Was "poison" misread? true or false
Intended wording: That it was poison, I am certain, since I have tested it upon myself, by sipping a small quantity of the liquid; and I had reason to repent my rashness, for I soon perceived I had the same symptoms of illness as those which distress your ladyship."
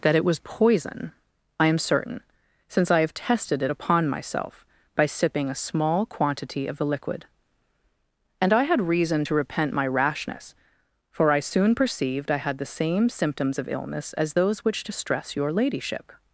false